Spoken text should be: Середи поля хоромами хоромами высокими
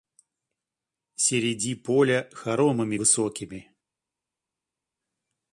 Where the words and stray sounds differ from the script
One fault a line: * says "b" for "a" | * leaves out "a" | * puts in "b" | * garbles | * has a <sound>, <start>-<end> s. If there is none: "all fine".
* leaves out "хоромами"